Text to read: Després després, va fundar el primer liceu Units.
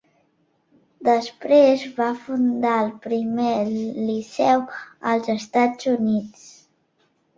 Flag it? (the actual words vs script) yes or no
yes